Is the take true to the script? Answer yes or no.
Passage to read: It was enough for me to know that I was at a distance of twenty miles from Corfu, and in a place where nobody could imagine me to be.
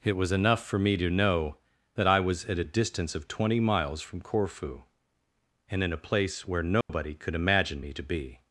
yes